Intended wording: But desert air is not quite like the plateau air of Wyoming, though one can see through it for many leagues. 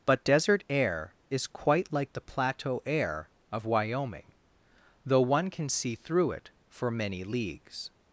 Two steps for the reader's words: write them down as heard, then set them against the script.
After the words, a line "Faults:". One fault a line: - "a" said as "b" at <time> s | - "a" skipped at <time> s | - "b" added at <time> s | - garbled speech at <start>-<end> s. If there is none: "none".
But desert air is quite like the plateau air of Wyoming, though one can see through it for many leagues.
Faults:
- "not" skipped at 1.5 s